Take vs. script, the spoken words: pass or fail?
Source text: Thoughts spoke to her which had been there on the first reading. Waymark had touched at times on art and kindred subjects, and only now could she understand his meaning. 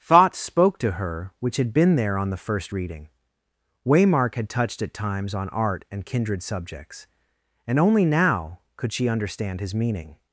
pass